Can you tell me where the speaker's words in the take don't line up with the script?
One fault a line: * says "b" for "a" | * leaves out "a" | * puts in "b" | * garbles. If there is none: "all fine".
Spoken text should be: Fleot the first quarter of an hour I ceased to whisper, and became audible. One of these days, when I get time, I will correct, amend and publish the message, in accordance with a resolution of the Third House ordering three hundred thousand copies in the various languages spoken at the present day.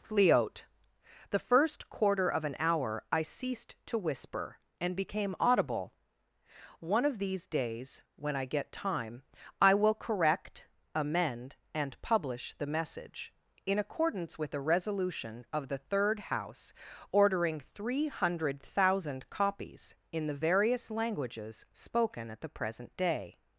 all fine